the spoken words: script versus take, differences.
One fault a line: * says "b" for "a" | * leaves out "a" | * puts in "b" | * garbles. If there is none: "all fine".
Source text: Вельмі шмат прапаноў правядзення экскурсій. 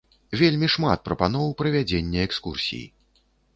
all fine